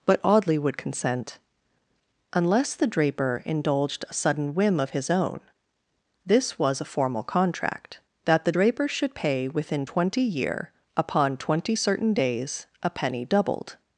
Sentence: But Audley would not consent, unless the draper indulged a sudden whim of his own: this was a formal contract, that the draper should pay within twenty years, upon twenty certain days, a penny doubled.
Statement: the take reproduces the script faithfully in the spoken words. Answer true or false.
false